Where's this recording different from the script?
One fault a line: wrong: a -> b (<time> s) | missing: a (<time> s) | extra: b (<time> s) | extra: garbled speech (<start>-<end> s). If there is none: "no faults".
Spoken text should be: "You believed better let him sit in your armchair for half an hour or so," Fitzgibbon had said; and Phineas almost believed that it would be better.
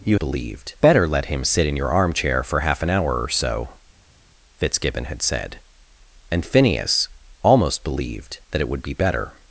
no faults